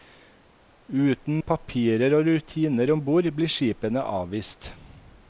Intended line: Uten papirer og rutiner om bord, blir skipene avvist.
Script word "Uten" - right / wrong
right